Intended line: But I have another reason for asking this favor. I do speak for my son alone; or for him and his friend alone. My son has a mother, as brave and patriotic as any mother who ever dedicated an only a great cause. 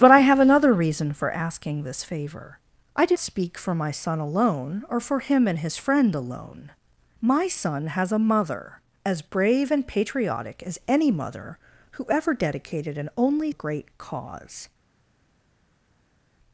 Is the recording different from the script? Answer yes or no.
no